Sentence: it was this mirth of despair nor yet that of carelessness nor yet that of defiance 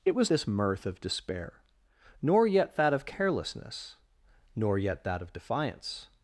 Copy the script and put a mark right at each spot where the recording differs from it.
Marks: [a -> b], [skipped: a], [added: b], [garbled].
it was this mirth of despair nor yet that of carelessness nor yet that of defiance